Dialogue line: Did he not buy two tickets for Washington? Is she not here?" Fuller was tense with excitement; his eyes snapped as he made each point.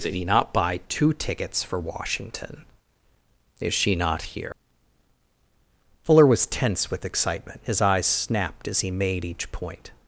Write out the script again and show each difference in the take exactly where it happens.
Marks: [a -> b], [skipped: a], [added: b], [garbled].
Did he not buy two tickets for Washington? Is she not here?" Fuller was tense with excitement; his eyes snapped as he made each point.